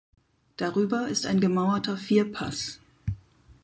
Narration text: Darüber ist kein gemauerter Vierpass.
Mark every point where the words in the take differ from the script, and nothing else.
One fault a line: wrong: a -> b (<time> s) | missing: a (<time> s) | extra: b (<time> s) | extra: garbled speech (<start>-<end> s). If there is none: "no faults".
wrong: kein -> ein (1.3 s)